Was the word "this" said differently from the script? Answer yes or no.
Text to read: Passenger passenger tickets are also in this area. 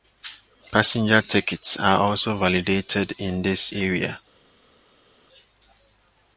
no